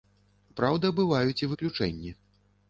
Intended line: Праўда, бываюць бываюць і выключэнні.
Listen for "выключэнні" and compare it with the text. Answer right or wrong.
right